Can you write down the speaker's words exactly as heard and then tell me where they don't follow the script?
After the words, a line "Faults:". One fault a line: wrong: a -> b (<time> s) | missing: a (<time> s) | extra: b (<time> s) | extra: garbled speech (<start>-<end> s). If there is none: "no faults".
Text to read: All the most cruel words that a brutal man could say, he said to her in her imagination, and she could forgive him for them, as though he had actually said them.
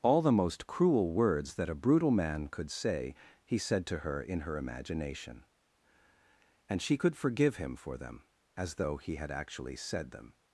All the most cruel words that a brutal man could say, he said to her in her imagination, and she could forgive him for them, as though he had actually said them.
Faults:
no faults